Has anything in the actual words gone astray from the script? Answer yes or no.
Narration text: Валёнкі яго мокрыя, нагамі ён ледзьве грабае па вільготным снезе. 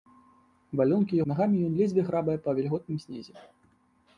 yes